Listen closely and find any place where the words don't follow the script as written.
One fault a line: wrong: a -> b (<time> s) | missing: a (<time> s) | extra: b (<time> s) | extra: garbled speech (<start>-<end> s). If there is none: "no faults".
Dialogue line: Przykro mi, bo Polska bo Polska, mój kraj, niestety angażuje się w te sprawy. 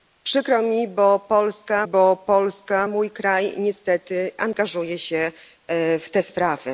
no faults